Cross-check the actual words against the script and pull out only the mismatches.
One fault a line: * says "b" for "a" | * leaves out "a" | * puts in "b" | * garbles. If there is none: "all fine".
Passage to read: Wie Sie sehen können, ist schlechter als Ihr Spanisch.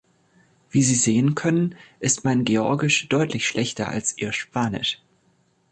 * puts in "mein Georgisch deutlich"